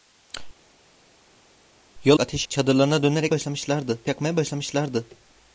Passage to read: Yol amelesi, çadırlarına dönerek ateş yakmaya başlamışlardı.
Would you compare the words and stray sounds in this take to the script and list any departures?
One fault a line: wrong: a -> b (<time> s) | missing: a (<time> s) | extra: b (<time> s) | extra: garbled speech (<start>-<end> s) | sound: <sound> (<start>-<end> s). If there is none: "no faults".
wrong: amelesi -> ateş (2.2 s)
wrong: ateş -> başlamışlardı (3.3 s)